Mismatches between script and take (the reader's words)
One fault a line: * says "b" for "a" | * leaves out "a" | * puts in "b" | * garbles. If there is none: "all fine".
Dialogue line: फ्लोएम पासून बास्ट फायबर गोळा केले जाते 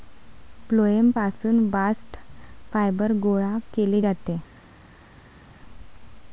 all fine